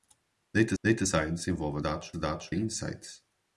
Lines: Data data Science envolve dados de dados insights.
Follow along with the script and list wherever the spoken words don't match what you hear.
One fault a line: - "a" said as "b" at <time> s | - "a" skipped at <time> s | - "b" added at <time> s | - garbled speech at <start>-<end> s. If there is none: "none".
none